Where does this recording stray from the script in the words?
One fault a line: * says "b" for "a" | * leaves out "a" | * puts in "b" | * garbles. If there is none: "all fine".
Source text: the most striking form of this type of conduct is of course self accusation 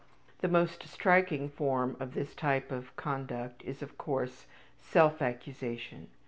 all fine